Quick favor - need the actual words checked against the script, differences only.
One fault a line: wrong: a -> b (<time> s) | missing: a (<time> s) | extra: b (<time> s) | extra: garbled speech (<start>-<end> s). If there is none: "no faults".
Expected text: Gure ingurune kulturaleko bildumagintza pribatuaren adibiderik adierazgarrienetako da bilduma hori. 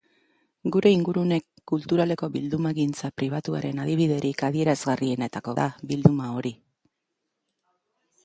no faults